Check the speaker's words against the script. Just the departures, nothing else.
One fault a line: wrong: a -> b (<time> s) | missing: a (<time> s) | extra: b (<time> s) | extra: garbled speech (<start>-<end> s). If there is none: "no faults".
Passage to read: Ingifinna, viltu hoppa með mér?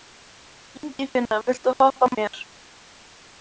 missing: með (2.1 s)